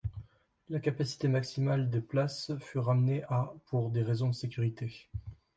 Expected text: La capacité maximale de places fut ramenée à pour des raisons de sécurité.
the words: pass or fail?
pass